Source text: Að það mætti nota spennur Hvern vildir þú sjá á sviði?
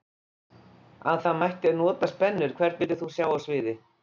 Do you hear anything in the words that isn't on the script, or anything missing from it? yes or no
no